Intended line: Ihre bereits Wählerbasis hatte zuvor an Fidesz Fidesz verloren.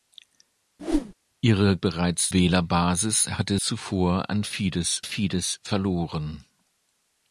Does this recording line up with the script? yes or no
yes